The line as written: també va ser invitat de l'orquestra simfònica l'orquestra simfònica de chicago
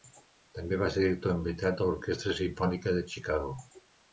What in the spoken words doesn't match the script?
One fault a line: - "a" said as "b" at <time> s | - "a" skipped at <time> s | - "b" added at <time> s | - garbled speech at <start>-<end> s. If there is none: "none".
- "director" added at 1.0 s
- "l'orquestra simfònica" skipped at 3.0 s